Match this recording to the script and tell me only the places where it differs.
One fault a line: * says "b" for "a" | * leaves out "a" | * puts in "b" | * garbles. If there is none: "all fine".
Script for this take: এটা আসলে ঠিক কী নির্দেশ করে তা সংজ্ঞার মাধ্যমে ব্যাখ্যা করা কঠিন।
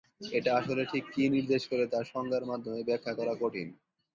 all fine